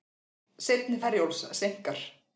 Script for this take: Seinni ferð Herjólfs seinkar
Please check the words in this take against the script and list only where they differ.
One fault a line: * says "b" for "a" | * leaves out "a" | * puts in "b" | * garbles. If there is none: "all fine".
* leaves out "ferð"